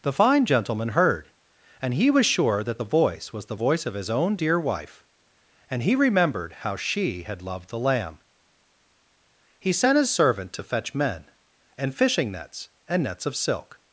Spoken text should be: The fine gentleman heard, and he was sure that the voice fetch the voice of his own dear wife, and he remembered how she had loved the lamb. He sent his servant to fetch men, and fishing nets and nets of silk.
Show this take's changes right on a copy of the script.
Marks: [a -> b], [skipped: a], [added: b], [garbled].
The fine gentleman heard, and he was sure that the voice [fetch -> was] the voice of his own dear wife, and he remembered how she had loved the lamb. He sent his servant to fetch men, and fishing nets and nets of silk.